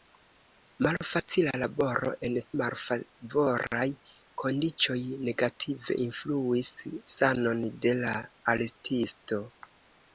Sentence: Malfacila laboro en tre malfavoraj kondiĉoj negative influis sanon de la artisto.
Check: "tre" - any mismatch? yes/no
yes